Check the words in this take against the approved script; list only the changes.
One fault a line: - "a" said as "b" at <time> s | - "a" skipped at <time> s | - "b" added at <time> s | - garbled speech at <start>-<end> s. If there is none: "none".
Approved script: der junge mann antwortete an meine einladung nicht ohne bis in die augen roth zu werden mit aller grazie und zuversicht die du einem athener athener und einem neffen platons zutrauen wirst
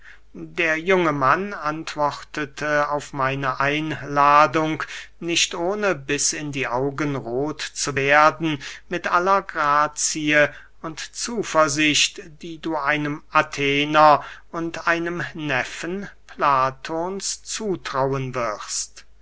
- "an" said as "auf" at 2.9 s
- "athener" skipped at 14.2 s